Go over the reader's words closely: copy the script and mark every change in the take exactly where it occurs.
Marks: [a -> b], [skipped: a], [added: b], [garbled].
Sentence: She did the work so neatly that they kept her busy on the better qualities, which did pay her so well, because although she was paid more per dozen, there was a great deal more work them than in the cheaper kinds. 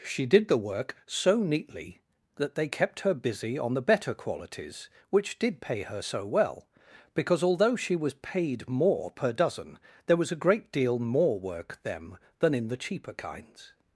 She did the work so neatly that they kept her busy on the better qualities, which did pay her so well, because although she was paid more per dozen, there was a great deal more work them than in the cheaper kinds.